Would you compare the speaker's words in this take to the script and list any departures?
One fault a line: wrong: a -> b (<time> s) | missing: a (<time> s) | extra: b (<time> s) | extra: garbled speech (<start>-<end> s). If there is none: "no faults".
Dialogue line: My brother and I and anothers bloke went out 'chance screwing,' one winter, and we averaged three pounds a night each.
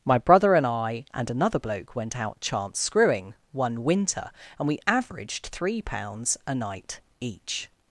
wrong: anothers -> another (1.3 s)